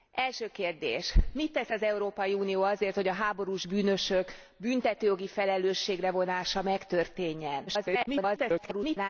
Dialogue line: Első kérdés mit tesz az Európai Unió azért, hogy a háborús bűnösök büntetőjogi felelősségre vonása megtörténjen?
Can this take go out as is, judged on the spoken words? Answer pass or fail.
fail